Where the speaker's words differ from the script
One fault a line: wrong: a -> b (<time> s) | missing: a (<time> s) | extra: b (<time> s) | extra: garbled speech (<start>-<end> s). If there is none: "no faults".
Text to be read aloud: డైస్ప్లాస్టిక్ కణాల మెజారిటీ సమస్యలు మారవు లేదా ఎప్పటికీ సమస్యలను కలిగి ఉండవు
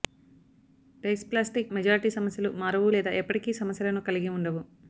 missing: కణాల (1.7 s)